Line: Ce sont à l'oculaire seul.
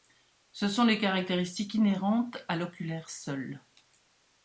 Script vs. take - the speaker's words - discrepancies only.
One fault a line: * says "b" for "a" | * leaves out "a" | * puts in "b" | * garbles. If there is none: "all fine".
* puts in "les caractéristiques inhérentes"